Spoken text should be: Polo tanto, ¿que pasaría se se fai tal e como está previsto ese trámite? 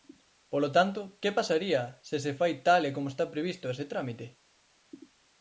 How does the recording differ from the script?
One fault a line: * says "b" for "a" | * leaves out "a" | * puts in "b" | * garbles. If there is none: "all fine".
all fine